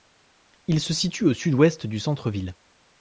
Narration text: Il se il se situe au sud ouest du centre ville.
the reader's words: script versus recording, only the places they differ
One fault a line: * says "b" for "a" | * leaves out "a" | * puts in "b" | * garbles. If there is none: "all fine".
* leaves out "il se"